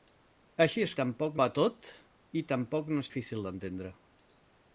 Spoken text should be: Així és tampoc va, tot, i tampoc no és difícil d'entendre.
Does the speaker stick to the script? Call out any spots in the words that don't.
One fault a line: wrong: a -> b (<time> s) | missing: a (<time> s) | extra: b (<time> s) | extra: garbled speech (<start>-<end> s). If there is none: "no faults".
no faults